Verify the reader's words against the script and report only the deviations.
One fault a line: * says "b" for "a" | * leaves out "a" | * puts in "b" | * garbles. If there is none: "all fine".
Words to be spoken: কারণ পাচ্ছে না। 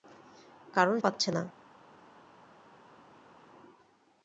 all fine